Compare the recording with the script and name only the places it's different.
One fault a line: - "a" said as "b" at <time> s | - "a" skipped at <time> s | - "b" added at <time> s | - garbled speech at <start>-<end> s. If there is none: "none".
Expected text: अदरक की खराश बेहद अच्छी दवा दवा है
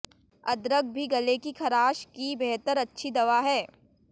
- "भी गले" added at 0.9 s
- "की" added at 2.2 s
- "दवा" skipped at 3.4 s